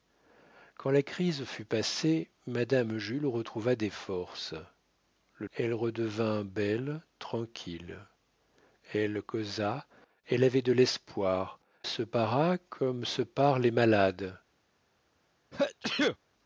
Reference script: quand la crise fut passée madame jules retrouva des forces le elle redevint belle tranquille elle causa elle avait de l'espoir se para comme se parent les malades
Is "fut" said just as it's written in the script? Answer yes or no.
yes